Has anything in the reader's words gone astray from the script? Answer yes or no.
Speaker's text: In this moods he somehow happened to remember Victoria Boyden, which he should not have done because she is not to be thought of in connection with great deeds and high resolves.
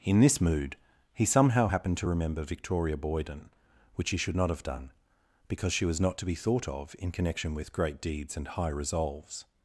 yes